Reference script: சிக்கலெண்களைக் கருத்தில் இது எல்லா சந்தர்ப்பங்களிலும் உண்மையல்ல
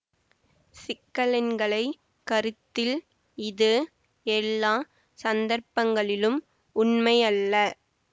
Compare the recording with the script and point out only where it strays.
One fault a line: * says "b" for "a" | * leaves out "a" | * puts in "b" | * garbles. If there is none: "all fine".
all fine